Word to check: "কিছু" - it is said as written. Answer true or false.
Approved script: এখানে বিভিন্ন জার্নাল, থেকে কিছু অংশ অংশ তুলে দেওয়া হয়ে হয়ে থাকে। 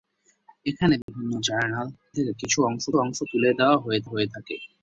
true